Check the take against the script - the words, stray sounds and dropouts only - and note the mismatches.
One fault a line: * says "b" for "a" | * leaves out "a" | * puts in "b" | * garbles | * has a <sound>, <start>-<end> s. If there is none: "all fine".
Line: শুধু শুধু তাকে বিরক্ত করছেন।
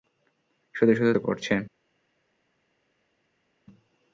* leaves out "তাকে বিরক্ত"